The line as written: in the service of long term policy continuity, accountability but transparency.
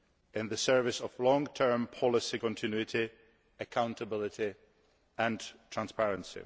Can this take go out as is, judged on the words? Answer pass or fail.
fail